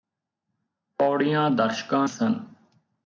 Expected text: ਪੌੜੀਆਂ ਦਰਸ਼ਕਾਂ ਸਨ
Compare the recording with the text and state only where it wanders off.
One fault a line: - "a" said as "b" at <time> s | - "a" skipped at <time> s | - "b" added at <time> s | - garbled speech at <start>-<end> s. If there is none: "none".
none